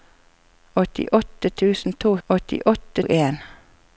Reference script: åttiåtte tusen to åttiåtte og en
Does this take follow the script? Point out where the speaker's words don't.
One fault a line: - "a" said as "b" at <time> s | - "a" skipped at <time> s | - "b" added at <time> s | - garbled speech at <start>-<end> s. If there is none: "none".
none